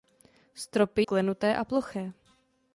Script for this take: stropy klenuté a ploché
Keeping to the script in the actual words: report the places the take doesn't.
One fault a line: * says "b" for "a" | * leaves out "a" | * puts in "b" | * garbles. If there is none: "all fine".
all fine